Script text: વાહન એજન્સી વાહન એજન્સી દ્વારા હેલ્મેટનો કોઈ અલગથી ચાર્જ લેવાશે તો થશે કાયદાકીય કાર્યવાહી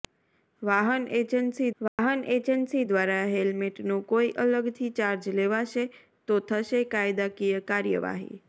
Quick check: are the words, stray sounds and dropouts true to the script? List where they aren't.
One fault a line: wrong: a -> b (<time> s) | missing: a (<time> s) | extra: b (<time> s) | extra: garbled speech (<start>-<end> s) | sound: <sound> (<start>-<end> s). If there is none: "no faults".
sound: dropout (1.9-2.0 s)